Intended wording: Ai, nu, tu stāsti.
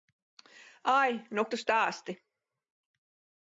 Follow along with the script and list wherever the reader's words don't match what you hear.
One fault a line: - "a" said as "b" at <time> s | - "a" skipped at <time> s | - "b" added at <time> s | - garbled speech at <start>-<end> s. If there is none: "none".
none